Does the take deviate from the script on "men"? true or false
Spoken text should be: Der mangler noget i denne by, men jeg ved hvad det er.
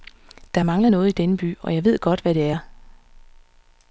true